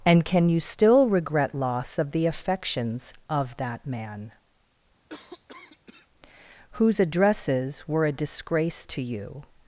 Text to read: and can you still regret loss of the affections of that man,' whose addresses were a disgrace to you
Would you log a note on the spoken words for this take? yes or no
no